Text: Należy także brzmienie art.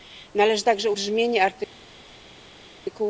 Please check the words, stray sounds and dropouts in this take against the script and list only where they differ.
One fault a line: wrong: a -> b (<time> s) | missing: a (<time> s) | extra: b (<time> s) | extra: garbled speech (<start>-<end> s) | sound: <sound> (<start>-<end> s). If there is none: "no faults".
no faults